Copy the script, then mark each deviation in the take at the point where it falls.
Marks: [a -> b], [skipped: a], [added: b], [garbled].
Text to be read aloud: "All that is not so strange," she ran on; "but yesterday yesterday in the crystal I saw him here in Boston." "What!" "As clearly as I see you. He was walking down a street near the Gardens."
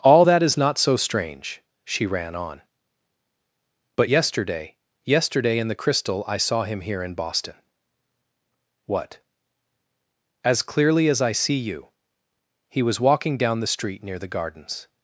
"All that is not so strange," she ran on; "but yesterday yesterday in the crystal I saw him here in Boston." "What!" "As clearly as I see you. He was walking down [a -> the] street near the Gardens."